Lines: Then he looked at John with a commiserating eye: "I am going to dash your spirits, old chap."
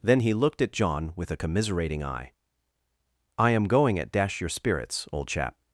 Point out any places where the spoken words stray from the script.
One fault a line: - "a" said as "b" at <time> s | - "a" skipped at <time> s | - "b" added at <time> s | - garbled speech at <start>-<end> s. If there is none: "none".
- "to" said as "at" at 4.0 s